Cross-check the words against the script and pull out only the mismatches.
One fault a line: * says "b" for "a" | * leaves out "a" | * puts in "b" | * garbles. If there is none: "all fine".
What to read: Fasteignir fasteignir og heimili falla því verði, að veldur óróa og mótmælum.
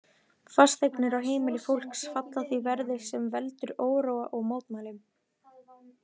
* leaves out "fasteignir"
* puts in "fólks"
* says "sem" for "að"